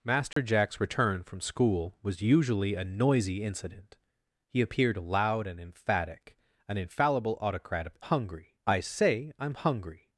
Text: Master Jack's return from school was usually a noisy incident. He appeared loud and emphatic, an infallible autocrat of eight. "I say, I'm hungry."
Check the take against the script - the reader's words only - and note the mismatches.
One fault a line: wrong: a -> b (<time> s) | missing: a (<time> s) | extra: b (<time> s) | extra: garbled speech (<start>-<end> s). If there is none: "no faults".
wrong: eight -> hungry (8.0 s)